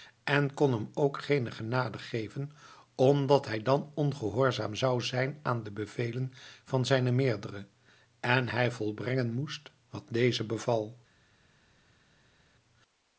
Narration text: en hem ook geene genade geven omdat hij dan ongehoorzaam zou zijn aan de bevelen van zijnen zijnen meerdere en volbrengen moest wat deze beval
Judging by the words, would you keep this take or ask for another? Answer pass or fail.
fail